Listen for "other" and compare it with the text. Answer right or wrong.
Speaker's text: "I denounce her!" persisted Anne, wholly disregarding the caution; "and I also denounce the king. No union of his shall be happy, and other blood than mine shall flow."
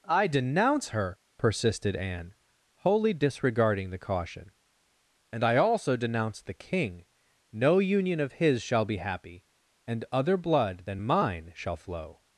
right